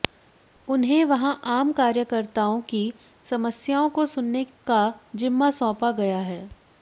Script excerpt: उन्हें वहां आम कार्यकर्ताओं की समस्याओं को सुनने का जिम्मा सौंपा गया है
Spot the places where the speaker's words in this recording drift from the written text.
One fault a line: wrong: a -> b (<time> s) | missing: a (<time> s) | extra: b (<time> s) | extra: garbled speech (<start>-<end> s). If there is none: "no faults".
no faults